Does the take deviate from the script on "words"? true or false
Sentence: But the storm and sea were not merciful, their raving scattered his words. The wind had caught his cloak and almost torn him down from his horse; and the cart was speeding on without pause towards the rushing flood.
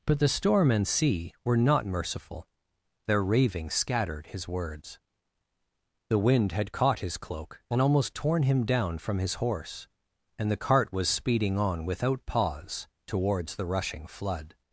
false